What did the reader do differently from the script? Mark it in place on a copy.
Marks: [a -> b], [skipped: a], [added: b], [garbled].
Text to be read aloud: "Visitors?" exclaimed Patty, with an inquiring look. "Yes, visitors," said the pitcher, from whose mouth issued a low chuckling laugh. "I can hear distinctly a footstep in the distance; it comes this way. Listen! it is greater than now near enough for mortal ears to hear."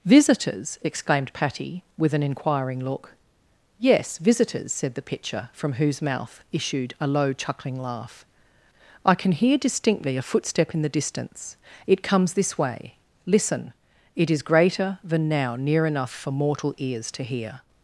"Visitors?" exclaimed Patty, with an inquiring look. "Yes, visitors," said the pitcher, from whose mouth issued a low chuckling laugh. "I can hear distinctly a footstep in the distance; it comes this way. Listen! it is greater than now near enough for mortal ears to hear."